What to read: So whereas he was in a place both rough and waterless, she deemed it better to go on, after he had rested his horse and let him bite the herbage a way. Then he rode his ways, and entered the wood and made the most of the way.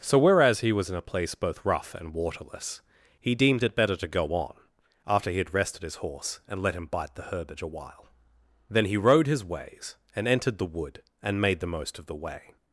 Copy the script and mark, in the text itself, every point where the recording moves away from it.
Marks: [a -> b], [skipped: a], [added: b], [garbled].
So whereas he was in a place both rough and waterless, [she -> he] deemed it better to go on, after he had rested his horse and let him bite the herbage a [way. -> while] Then he rode his ways, and entered the wood and made the most of the way.